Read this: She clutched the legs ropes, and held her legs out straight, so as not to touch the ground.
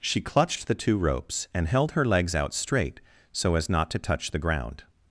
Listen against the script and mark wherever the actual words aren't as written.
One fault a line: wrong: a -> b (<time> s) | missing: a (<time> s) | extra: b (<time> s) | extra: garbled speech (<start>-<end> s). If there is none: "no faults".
wrong: legs -> two (0.8 s)